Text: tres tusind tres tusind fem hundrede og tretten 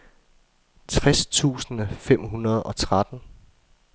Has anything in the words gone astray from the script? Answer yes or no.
yes